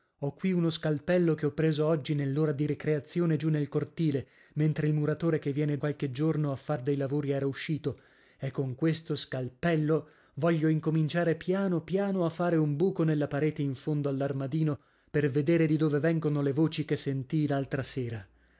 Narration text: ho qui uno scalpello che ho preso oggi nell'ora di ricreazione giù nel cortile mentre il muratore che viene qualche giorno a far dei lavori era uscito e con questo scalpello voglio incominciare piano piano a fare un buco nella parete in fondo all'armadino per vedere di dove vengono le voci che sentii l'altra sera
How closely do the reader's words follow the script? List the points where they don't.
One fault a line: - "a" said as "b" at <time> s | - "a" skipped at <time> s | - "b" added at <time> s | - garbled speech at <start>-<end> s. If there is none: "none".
none